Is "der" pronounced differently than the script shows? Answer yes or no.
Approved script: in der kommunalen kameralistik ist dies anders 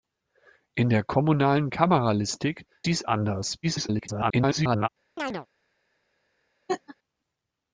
no